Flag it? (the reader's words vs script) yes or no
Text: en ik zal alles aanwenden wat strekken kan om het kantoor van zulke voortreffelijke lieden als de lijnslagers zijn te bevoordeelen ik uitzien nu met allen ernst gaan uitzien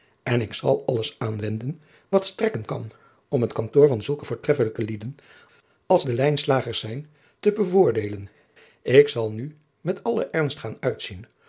yes